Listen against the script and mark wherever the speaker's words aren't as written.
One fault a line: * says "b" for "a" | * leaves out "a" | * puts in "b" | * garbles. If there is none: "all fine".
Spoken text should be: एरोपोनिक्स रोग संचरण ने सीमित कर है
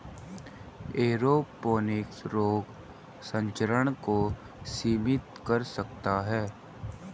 * says "को" for "ने"
* puts in "सकता"